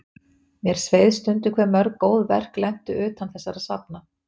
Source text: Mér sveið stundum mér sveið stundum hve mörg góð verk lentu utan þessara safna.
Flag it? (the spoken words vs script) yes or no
yes